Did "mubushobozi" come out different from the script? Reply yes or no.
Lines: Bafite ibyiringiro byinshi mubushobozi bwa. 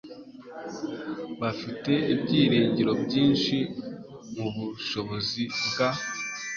no